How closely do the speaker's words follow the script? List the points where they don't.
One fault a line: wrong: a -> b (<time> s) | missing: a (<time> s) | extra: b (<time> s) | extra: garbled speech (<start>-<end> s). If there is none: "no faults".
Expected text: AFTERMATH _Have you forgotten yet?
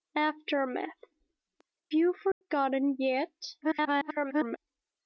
missing: Have (1.0 s)
extra: garbled speech (3.6-4.6 s)